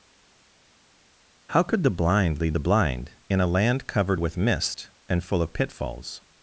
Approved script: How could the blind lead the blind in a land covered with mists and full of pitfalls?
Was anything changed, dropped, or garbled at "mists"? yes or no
yes